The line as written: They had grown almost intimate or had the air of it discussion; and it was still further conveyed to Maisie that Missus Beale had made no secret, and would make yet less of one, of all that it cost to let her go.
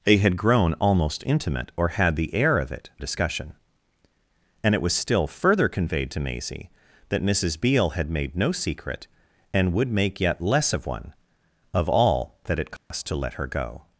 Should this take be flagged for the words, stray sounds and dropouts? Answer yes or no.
yes